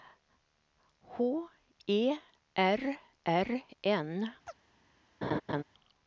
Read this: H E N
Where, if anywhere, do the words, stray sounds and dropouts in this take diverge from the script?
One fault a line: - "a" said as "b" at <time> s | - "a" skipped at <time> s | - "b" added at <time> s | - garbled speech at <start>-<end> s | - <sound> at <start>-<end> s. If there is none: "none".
- "R R" added at 2.6 s
- chirp at 4.5-4.6 s
- laugh at 5.2-5.6 s